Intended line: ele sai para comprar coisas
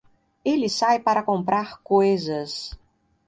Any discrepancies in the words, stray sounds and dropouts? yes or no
no